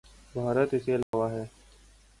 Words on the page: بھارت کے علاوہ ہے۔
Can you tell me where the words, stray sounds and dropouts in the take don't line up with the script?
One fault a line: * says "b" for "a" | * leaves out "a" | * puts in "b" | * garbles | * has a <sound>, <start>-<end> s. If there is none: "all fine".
* puts in "اس"
* has a dropout, 1.0-1.1 s